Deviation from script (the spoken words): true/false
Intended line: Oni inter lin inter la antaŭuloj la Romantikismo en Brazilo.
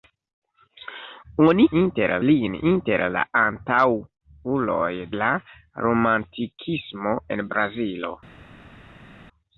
false